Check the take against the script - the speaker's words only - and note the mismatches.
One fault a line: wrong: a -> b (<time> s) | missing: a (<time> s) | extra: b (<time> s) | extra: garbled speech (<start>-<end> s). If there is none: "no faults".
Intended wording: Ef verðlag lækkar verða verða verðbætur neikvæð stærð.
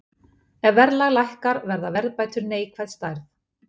missing: verða (1.9 s)